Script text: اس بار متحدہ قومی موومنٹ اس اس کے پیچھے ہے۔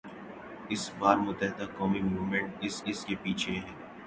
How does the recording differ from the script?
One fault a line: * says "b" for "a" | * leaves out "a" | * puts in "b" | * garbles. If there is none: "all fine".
all fine